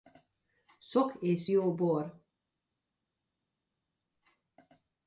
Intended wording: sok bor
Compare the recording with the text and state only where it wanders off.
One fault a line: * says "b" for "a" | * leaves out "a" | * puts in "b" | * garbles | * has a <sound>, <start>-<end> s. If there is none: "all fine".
* puts in "és jó"